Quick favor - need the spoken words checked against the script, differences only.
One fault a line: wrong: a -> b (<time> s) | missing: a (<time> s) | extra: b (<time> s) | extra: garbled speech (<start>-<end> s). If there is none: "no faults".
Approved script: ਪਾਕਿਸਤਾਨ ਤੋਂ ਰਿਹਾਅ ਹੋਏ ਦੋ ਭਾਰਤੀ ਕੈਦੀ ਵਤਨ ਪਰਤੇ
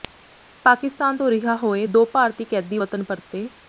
no faults